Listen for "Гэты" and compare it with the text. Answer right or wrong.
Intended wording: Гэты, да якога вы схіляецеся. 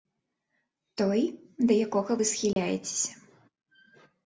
wrong